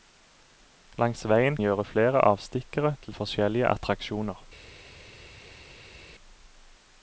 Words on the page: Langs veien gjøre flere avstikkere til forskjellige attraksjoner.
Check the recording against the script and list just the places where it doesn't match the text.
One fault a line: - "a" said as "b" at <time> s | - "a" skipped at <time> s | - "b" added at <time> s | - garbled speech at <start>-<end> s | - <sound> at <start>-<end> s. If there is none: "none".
none